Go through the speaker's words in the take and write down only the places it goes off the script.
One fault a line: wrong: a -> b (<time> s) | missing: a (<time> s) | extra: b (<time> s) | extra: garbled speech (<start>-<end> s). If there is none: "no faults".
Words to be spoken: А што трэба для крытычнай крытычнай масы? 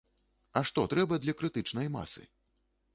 missing: крытычнай (1.9 s)